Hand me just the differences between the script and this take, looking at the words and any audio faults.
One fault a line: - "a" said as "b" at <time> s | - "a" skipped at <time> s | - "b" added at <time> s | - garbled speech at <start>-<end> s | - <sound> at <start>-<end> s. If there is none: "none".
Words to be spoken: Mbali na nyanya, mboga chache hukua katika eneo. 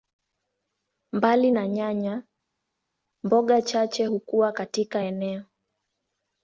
none